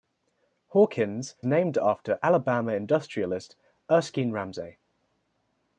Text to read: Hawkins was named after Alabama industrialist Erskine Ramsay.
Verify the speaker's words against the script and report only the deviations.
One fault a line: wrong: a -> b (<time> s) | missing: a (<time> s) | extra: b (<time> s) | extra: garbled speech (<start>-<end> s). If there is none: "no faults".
missing: was (1.4 s)